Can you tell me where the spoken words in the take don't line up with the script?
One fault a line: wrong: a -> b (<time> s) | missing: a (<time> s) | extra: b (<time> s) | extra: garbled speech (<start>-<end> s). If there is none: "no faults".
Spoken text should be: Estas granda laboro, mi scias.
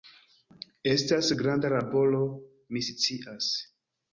no faults